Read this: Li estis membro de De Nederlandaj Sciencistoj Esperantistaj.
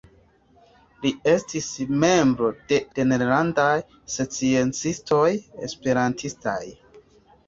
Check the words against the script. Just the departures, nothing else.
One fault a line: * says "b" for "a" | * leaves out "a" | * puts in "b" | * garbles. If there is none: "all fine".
all fine